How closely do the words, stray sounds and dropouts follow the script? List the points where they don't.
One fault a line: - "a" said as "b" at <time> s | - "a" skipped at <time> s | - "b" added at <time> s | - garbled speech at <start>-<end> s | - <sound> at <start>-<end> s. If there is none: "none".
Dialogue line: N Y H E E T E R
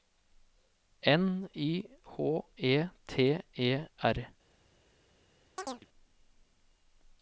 - "E" skipped at 2.9 s
- chirp at 5.6-5.9 s